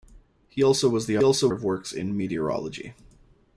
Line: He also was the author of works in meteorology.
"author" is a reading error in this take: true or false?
true